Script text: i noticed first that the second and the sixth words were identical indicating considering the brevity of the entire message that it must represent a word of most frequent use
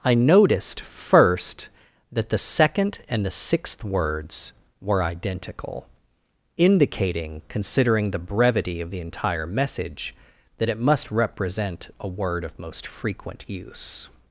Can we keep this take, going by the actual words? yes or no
yes